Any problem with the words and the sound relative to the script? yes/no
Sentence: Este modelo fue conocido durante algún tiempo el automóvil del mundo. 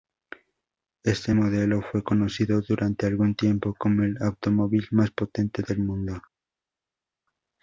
yes